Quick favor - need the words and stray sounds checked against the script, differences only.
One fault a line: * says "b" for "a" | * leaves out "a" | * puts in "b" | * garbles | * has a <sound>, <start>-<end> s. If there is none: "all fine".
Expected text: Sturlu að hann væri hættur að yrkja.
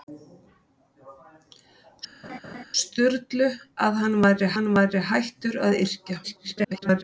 * has a laugh, 2.2-2.6 s
* puts in "hann væri"
* garbles